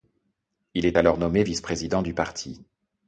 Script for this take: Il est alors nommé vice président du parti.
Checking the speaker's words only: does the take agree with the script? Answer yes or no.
yes